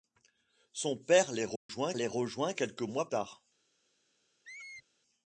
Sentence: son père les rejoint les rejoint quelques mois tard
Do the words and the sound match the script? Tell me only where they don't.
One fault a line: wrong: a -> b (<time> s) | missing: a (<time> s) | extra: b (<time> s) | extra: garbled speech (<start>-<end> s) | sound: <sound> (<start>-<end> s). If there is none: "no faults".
sound: dropout (1.6-1.7 s)
sound: squeak (4.4-4.9 s)